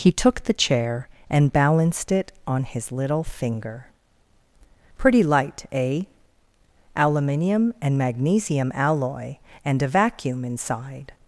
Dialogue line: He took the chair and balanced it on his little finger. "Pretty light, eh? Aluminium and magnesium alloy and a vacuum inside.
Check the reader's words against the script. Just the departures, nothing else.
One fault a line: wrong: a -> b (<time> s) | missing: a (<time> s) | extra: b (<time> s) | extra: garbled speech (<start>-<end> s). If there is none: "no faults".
no faults